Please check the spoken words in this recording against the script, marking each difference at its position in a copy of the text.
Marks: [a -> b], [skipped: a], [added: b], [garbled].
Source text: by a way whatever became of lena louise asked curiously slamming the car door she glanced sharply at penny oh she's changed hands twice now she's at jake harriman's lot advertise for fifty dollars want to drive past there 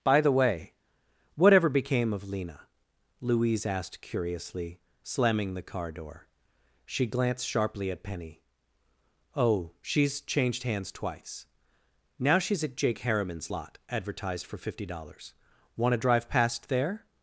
by [a -> the] way whatever became of lena louise asked curiously slamming the car door she glanced sharply at penny oh she's changed hands twice now she's at jake harriman's lot [advertise -> advertised] for fifty dollars want to drive past there